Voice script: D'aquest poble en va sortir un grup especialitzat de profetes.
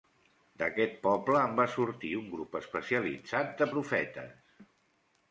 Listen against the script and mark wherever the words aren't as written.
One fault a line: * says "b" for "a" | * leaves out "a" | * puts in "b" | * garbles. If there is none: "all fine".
all fine